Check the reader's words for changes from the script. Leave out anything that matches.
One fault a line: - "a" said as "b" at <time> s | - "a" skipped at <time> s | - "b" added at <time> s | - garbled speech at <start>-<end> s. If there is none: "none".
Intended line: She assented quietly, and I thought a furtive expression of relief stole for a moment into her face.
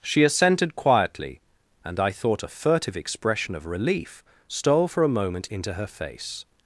none